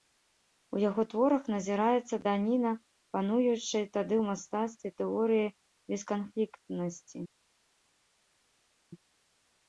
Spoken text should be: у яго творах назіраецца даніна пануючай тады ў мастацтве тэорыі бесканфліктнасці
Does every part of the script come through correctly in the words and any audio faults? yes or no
yes